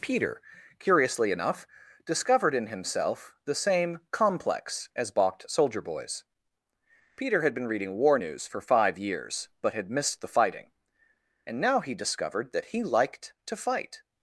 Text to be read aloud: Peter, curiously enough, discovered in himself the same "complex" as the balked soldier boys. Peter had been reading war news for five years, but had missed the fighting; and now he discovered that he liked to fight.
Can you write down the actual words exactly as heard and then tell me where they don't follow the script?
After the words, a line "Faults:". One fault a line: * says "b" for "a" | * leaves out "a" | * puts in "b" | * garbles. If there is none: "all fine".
Peter, curiously enough, discovered in himself the same "complex" as balked soldier boys. Peter had been reading war news for five years, but had missed the fighting; and now he discovered that he liked to fight.
Faults:
* leaves out "the"